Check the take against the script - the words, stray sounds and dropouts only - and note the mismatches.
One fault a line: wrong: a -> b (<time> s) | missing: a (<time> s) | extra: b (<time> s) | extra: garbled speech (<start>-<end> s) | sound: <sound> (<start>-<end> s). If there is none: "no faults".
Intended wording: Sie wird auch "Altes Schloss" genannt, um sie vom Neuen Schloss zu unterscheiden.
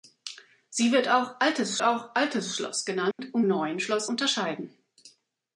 extra: auch Altes (1.8 s)
sound: dropout (3.1-3.2 s)
missing: sie vom (3.4 s)
missing: zu (4.1 s)